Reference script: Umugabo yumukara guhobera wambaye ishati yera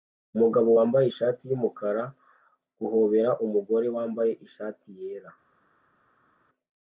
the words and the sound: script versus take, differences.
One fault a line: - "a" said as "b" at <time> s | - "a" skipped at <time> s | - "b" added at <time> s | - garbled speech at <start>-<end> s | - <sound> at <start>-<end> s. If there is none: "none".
- "wambaye ishati" added at 0.8 s
- "umugore" added at 3.4 s